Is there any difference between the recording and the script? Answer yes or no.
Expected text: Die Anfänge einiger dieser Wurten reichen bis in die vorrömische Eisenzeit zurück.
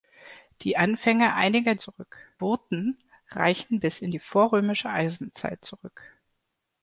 yes